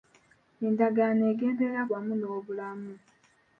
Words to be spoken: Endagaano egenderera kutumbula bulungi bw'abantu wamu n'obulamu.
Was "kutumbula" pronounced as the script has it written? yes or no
no